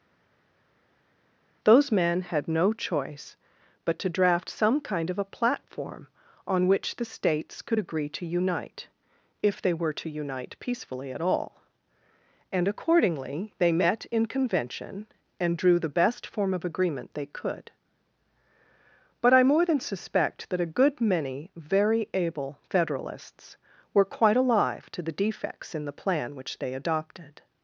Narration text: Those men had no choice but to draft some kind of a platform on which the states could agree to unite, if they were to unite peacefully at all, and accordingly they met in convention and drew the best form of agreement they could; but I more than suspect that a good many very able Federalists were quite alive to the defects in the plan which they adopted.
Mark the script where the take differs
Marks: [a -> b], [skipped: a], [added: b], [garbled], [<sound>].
Those men had no choice but to draft some kind of a platform on which the states could agree to unite, if they were to unite peacefully at all, and accordingly they met in convention and drew the best form of agreement they could; but I more than suspect that a good many very able Federalists were quite alive to the defects in the plan which they adopted.